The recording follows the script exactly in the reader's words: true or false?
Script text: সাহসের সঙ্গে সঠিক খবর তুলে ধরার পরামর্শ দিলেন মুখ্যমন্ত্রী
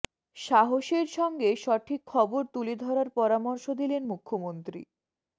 true